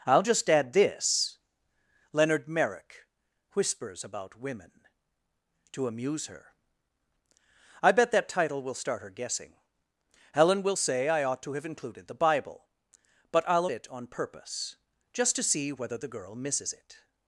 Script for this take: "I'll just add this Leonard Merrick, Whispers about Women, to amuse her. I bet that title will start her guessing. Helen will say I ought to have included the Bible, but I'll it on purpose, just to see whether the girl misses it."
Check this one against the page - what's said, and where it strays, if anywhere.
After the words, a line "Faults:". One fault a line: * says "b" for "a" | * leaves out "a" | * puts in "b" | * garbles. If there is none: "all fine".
"I'll just add this Leonard Merrick, Whispers about Women, to amuse her. I bet that title will start her guessing. Helen will say I ought to have included the Bible, but I'll it on purpose, just to see whether the girl misses it."
Faults:
all fine